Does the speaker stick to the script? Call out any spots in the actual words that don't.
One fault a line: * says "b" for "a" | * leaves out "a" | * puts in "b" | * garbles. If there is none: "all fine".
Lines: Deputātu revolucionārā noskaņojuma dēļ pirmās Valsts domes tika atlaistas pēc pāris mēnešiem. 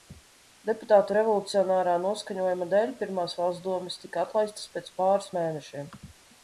all fine